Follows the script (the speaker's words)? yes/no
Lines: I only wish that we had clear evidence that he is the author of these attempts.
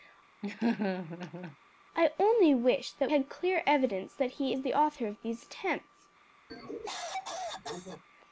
no